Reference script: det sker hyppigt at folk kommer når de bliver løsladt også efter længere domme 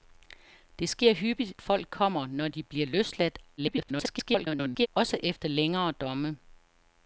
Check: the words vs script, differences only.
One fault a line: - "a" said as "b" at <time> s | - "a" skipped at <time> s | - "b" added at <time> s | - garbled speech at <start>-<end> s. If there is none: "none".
- "at" skipped at 1.5 s
- garbled speech at 3.6-4.9 s